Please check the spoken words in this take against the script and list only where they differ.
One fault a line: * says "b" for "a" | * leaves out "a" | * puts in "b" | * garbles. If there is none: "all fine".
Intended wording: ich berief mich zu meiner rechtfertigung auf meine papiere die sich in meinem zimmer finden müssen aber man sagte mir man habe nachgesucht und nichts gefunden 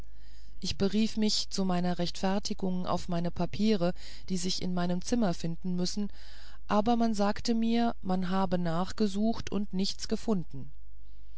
all fine